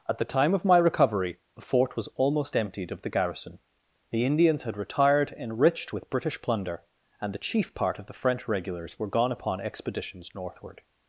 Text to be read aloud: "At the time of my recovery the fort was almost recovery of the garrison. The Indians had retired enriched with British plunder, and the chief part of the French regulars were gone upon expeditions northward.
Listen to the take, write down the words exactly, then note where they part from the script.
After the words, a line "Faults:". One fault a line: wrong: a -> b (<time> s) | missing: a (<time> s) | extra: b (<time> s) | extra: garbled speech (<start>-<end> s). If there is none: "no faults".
"At the time of my recovery the fort was almost emptied of the garrison. The Indians had retired enriched with British plunder, and the chief part of the French regulars were gone upon expeditions northward.
Faults:
wrong: recovery -> emptied (2.6 s)